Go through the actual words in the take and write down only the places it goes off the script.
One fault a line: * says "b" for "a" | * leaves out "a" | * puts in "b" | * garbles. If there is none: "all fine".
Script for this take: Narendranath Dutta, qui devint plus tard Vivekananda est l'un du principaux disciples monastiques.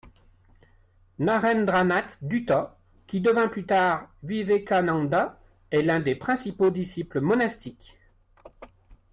* says "des" for "du"